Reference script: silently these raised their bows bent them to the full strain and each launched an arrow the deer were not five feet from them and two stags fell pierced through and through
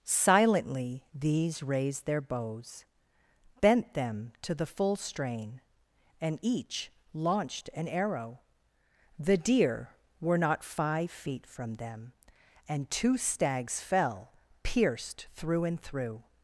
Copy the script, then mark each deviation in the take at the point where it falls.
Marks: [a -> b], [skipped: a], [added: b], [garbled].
silently these raised their bows bent them to the full strain and each launched an arrow the deer were not five feet from them and two stags fell pierced through and through